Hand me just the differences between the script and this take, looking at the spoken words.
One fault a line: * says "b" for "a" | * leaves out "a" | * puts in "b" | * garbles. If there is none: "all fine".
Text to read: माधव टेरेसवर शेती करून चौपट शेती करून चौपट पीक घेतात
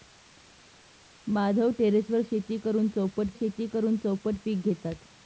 all fine